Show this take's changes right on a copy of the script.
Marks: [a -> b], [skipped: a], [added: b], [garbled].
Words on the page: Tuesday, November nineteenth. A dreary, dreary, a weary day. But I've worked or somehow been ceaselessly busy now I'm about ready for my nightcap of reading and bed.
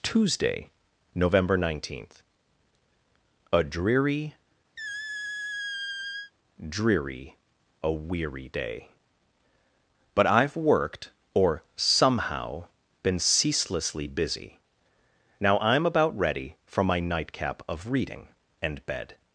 Tuesday, November nineteenth. A dreary, dreary, a weary day. But I've worked or somehow been ceaselessly busy now I'm about ready for my nightcap of reading and bed.